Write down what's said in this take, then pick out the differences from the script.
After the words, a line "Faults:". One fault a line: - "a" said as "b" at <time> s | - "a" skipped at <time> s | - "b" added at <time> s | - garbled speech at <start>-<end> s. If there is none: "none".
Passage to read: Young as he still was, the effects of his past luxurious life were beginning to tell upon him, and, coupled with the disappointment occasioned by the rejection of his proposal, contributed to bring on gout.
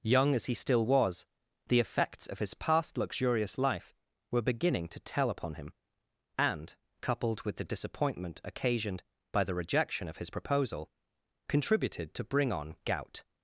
Young as he still was, the effects of his past luxurious life were beginning to tell upon him, and, coupled with the disappointment occasioned by the rejection of his proposal, contributed to bring on gout.
Faults:
none